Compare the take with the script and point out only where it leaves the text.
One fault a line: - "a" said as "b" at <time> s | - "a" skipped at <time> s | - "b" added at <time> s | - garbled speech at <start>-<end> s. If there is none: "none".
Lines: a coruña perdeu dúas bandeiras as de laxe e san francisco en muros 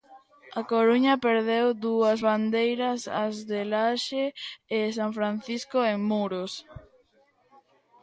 none